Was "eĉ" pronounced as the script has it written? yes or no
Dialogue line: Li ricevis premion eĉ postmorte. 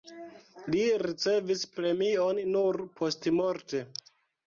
no